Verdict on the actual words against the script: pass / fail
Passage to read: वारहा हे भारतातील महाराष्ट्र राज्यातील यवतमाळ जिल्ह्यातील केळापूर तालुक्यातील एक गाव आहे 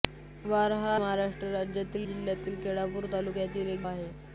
fail